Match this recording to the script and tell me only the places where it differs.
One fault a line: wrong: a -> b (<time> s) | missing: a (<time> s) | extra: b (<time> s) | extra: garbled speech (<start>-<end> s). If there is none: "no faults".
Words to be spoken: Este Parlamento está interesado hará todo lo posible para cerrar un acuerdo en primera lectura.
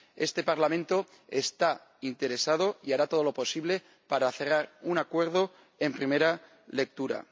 extra: y (2.8 s)